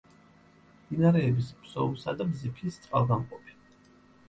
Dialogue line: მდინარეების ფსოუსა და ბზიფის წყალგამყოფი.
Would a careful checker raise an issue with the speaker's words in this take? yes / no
no